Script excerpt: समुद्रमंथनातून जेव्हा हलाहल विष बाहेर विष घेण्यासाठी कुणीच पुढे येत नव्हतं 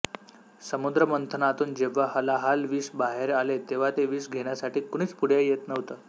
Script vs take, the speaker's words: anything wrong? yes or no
yes